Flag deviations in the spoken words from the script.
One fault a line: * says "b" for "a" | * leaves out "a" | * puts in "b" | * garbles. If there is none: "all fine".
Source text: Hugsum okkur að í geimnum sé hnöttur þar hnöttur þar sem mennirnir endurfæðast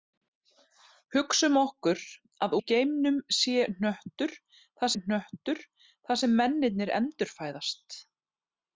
all fine